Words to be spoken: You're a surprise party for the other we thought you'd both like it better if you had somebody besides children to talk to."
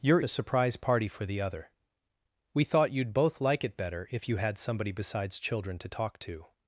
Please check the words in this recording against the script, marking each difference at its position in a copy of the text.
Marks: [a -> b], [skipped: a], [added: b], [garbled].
You're a surprise party for the other we thought you'd both like it better if you had somebody besides children to talk to."